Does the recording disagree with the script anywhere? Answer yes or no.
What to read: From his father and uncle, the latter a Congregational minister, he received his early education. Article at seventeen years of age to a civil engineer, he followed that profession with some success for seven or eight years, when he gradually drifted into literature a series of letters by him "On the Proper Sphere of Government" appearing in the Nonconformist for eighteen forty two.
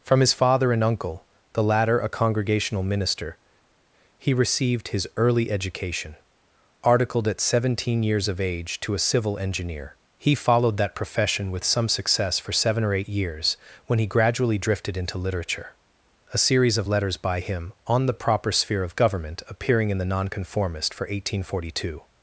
yes